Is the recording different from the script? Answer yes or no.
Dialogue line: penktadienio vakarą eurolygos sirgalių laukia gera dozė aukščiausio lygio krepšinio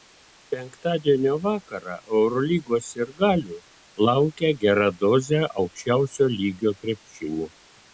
no